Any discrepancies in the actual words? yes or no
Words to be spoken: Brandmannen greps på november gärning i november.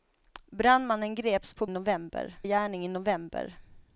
no